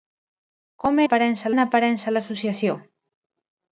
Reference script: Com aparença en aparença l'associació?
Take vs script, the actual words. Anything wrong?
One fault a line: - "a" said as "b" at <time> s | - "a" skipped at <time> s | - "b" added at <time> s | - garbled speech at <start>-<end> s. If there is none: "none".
none